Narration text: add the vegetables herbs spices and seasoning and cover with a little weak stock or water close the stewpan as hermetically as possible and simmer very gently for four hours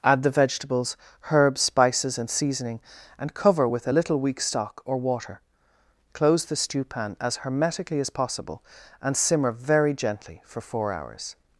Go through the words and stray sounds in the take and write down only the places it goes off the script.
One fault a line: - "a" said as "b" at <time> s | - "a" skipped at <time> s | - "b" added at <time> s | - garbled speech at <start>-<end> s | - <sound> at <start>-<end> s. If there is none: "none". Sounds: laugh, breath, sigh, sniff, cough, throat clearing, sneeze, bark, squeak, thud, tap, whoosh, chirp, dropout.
none